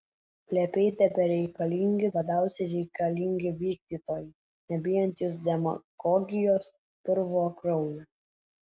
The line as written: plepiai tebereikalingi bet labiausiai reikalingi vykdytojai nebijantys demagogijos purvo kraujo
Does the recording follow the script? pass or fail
fail